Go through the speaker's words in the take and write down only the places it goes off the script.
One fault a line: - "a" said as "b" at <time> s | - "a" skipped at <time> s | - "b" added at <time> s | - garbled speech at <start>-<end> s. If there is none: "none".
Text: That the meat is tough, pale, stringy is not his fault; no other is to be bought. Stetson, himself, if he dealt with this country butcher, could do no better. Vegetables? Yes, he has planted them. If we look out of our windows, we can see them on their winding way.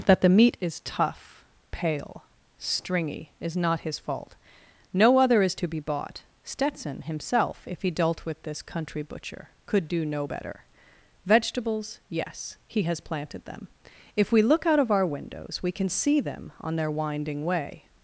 none